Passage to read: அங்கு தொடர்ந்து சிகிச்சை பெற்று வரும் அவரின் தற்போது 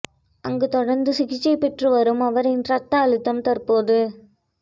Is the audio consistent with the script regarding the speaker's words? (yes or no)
no